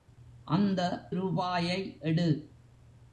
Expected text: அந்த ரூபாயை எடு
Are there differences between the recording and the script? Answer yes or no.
no